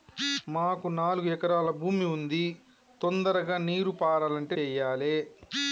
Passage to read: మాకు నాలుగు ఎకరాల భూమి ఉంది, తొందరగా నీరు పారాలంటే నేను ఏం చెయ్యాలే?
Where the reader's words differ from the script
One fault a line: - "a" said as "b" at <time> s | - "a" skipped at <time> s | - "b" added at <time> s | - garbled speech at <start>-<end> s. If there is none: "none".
- "నేను ఏం" skipped at 4.5 s